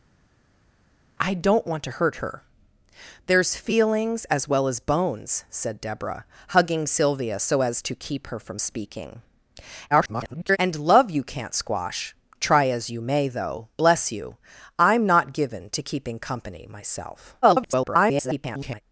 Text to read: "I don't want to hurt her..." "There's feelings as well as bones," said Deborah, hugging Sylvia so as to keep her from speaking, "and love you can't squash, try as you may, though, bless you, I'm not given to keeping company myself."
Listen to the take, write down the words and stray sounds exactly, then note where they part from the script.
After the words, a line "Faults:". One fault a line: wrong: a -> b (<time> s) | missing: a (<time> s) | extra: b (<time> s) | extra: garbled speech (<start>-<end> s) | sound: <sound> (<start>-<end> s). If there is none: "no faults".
"I don't want to hurt her..." "There's feelings as well as bones," said Deborah, hugging Sylvia so as to keep her from speaking, [garbled] "and love you can't squash, try as you may, though, bless you, I'm not given to keeping company myself." [garbled]
Faults:
extra: garbled speech (9.9-10.6 s)
extra: garbled speech (17.4-18.8 s)